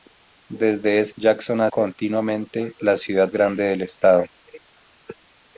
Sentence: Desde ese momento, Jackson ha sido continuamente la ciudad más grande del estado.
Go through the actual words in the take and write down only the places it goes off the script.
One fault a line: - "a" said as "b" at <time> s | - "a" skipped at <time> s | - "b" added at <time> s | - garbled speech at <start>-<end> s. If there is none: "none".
- "momento" skipped at 1.1 s
- "sido" skipped at 1.7 s
- "más" skipped at 3.3 s